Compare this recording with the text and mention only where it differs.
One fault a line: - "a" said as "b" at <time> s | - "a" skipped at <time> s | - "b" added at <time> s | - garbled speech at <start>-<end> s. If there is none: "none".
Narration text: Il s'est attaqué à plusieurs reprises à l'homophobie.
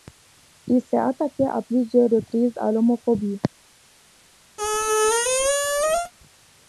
none